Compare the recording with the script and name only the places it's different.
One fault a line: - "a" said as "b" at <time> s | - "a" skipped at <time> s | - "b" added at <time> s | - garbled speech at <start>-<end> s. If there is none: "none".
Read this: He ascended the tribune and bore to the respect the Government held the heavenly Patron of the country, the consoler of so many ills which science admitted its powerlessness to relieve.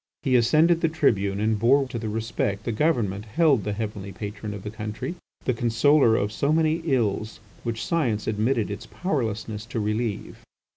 none